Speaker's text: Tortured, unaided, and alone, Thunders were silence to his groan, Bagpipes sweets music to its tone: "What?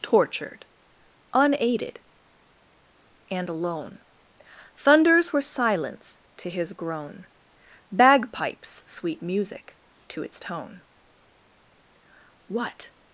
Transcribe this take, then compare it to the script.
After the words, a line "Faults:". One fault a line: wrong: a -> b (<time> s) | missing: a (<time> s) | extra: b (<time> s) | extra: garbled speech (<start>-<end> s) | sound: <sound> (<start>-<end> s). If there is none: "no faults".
Tortured, unaided, and alone, Thunders were silence to his groan, Bagpipes sweet music to its tone: "What?
Faults:
wrong: sweets -> sweet (8.9 s)